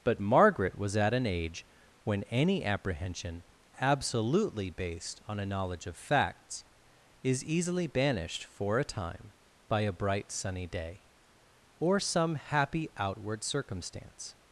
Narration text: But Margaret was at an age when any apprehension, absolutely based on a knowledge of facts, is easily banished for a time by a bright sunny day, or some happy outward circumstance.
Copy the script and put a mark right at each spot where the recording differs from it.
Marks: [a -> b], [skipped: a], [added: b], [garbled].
But Margaret was at an age when any apprehension, absolutely based on a knowledge of facts, is easily banished for a time by a bright sunny day, or some happy outward circumstance.